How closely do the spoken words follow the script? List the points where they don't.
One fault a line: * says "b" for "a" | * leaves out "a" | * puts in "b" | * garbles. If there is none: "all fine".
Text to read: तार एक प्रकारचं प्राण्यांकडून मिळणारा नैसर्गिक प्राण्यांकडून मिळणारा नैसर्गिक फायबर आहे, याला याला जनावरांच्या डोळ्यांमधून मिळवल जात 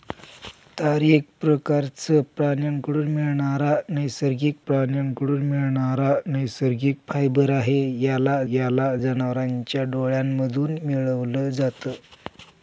all fine